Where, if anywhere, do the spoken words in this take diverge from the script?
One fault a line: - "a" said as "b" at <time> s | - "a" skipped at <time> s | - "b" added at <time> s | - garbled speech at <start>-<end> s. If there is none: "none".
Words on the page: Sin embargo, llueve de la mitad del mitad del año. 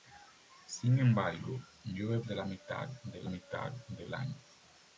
none